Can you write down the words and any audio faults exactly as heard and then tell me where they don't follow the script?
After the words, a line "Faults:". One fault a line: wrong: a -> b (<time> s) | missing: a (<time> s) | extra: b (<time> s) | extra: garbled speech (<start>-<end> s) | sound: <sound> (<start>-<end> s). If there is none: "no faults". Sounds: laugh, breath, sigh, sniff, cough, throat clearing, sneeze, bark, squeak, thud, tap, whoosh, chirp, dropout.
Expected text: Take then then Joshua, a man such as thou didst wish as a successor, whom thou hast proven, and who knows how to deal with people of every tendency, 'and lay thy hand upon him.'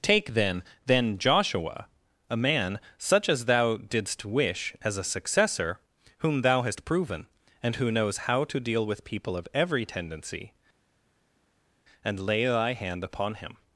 Take then then Joshua, a man such as thou didst wish as a successor, whom thou hast proven, and who knows how to deal with people of every tendency, 'and lay thy hand upon him.'
Faults:
no faults